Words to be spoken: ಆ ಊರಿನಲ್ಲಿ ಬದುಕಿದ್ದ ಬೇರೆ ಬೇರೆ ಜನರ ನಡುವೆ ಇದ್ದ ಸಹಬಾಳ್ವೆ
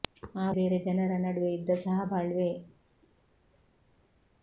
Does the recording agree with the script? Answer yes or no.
no